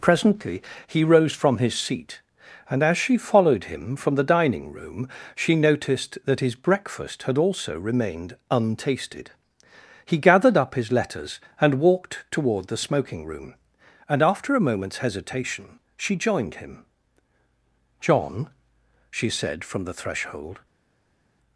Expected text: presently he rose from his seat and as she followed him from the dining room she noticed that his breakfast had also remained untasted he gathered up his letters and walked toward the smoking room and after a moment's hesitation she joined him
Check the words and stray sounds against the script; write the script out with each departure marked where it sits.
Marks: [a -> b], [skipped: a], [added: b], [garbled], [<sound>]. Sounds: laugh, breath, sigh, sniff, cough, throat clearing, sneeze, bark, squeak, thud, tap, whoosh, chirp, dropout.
presently he rose from his seat and as she followed him from the dining room she noticed that his breakfast had also remained untasted he gathered up his letters and walked toward the smoking room and after a moment's hesitation she joined him [added: john she said from the threshold]